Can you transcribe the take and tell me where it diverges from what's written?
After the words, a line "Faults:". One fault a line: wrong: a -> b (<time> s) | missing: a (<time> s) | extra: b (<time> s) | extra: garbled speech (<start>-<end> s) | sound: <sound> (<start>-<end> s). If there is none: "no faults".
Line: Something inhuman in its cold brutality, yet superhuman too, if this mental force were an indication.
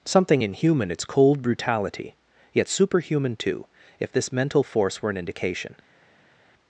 Something inhuman its cold brutality, yet superhuman too, if this mental force were an indication.
Faults:
missing: in (0.9 s)